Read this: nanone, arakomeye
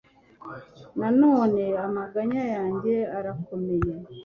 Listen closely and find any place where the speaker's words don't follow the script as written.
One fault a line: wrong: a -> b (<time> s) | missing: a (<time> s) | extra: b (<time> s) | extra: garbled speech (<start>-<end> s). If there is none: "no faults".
extra: amaganya yanjye (1.9 s)